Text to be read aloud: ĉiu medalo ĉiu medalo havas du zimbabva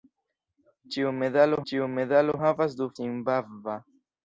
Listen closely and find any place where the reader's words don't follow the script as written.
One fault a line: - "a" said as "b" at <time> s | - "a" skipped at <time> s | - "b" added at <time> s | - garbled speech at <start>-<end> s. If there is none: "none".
none